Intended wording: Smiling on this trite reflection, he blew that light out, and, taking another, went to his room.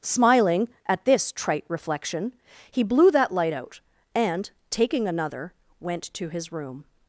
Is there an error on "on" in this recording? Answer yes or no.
yes